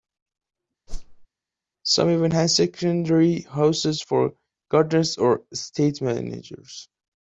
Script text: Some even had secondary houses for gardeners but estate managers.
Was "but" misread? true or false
true